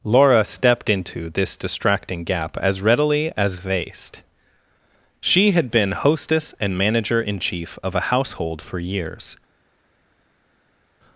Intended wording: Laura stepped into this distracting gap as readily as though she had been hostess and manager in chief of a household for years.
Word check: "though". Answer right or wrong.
wrong